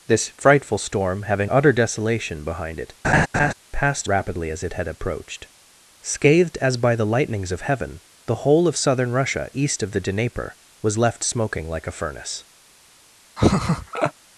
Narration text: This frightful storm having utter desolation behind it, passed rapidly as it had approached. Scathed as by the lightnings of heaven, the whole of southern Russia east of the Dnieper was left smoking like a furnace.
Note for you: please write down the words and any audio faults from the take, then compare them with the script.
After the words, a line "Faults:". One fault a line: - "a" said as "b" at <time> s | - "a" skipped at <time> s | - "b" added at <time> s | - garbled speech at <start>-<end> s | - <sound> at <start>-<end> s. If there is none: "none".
This frightful storm having utter desolation behind it, passed rapidly as it had approached. Scathed as by the lightnings of heaven, the whole of southern Russia east of the Dnieper was left smoking like a furnace.
Faults:
- laugh at 3.0-3.5 s
- laugh at 13.4-14.1 s